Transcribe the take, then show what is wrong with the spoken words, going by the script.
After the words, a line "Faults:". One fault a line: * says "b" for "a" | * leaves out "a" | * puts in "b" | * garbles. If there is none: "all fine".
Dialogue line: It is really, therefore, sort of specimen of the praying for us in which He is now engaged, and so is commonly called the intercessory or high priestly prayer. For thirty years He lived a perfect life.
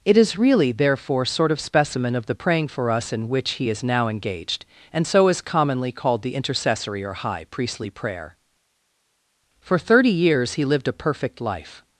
It is really, therefore, sort of specimen of the praying for us in which He is now engaged, and so is commonly called the intercessory or high priestly prayer. For thirty years He lived a perfect life.
Faults:
all fine